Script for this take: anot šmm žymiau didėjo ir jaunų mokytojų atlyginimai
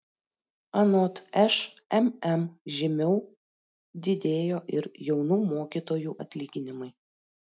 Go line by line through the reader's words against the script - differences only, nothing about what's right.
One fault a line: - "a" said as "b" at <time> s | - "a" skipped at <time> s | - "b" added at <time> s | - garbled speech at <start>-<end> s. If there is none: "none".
none